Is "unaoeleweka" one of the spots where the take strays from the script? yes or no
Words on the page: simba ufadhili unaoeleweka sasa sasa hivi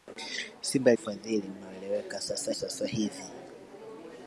no